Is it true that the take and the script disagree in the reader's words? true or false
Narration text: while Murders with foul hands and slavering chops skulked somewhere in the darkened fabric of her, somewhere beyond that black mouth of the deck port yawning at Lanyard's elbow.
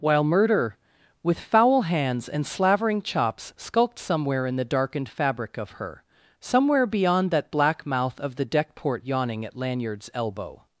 true